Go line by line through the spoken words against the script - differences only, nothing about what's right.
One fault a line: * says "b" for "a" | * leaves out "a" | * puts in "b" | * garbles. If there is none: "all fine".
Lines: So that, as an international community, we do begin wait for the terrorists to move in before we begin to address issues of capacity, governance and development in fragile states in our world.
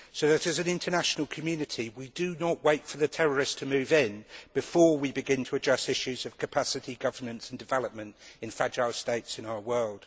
* says "not" for "begin"